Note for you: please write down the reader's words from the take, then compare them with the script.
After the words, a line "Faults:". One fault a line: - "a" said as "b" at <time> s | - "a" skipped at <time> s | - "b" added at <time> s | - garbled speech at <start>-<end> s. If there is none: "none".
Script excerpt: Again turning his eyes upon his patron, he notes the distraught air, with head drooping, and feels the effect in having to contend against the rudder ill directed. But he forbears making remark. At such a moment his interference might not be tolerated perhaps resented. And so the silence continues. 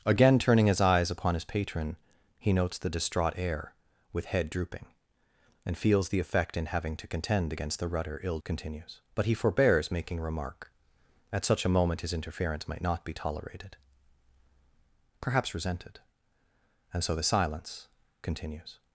Again turning his eyes upon his patron, he notes the distraught air, with head drooping, and feels the effect in having to contend against the rudder ill continues. But he forbears making remark. At such a moment his interference might not be tolerated perhaps resented. And so the silence continues.
Faults:
- "directed" said as "continues" at 8.4 s